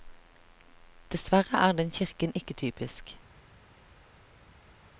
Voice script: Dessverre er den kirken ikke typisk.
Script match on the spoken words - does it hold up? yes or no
yes